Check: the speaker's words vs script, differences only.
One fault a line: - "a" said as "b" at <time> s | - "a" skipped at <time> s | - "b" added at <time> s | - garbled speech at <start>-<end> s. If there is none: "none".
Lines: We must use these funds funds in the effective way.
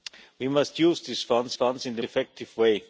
none